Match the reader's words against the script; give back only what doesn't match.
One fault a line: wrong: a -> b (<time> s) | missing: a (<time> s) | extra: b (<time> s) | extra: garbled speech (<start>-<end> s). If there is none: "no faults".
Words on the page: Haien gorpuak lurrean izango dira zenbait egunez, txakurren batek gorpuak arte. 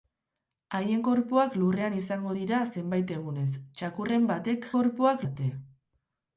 no faults